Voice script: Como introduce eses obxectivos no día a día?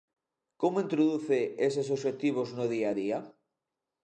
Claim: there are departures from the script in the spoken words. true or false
false